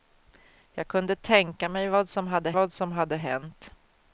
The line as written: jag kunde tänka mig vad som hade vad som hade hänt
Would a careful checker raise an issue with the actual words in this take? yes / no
no